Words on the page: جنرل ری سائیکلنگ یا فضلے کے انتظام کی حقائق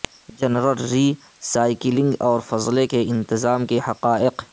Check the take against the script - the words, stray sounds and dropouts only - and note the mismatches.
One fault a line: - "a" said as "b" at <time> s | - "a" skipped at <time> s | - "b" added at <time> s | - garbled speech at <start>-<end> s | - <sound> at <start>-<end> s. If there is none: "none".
- "یا" said as "اور" at 2.2 s
- "کی" said as "کے" at 3.6 s